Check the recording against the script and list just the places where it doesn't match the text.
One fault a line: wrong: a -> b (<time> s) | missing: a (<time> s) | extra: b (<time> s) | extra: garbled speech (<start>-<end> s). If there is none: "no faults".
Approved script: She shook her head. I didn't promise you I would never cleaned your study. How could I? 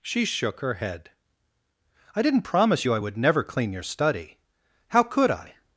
wrong: cleaned -> clean (3.4 s)